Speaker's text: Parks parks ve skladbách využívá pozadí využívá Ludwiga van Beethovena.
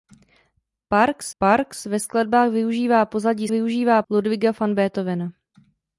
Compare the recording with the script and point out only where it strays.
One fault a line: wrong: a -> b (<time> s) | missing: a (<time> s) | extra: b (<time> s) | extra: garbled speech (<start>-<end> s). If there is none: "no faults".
no faults